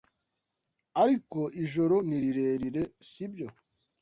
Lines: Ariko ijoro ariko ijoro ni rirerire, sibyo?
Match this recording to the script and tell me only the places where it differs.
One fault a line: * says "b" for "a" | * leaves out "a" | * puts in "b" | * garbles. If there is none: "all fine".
* leaves out "ariko ijoro"